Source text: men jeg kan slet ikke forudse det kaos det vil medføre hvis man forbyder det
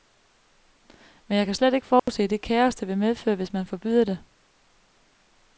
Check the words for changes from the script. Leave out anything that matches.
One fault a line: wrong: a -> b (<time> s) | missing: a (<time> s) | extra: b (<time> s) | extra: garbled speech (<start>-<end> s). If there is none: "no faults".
no faults